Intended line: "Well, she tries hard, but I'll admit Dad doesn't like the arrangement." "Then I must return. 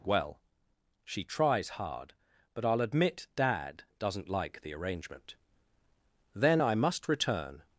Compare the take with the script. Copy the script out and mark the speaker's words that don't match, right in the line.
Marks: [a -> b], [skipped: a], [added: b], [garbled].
"Well, she tries hard, but I'll admit Dad doesn't like the arrangement." "Then I must return.